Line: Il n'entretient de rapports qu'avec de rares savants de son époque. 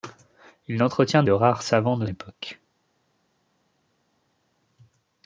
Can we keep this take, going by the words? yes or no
no